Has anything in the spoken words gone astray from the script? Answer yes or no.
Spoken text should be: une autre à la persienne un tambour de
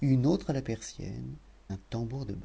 no